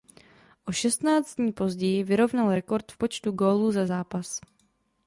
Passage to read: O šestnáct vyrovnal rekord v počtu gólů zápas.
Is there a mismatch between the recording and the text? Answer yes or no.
yes